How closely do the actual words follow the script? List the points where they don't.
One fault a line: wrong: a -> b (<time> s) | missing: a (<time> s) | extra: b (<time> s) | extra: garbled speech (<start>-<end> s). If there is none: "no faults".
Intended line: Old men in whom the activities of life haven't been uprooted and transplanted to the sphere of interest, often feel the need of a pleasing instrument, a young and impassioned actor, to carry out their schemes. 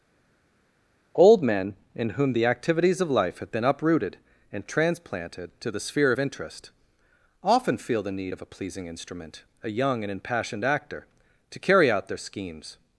wrong: haven't -> have (3.4 s)